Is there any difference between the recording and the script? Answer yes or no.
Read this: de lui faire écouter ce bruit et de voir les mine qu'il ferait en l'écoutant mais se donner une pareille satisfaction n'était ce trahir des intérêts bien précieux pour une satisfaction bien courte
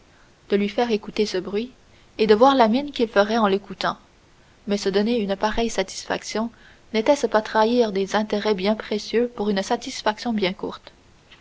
yes